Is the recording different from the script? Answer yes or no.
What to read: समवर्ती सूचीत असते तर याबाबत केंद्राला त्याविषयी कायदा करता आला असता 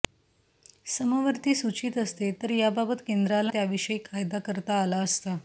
no